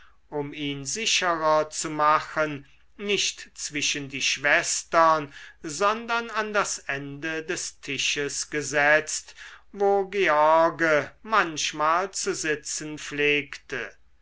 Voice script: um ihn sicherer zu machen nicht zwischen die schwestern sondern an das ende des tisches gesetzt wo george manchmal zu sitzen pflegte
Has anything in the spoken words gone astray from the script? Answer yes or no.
no